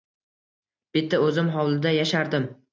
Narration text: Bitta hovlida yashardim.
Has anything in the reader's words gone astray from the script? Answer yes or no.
yes